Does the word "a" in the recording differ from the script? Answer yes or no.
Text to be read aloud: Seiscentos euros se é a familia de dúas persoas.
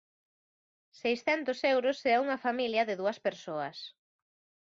yes